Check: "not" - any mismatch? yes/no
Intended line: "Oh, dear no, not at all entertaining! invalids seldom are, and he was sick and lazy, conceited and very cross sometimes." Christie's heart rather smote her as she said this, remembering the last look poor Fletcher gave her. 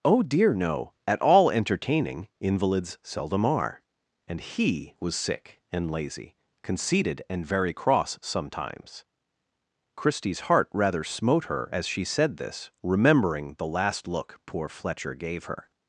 yes